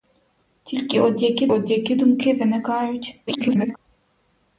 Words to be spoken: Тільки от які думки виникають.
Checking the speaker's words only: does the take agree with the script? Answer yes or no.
no